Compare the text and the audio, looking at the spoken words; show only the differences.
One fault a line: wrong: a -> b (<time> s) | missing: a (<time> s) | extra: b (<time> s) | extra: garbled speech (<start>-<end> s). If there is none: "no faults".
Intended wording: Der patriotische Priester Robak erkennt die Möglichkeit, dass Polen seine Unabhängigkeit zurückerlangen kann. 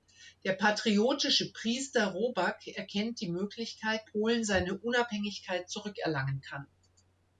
missing: dass (4.0 s)